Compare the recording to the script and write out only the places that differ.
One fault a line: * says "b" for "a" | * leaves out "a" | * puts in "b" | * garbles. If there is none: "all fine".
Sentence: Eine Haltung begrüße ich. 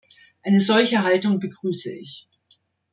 * puts in "solche"